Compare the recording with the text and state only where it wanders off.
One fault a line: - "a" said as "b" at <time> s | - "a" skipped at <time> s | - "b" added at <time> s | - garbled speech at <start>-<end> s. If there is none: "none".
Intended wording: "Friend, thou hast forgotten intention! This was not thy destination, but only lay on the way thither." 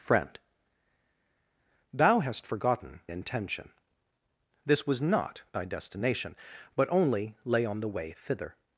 none